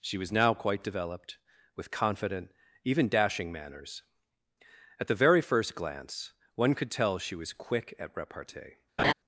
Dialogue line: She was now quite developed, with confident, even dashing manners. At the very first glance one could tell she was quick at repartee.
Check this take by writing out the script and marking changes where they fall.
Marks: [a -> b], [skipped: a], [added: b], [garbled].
She was now quite developed, with confident, even dashing manners. At the very first glance one could tell she was quick at repartee.